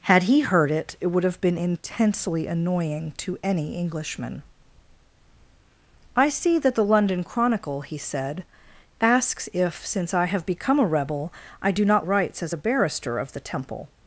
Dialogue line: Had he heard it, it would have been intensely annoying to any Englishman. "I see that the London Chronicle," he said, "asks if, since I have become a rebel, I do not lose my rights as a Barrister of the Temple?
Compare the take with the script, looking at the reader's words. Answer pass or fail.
fail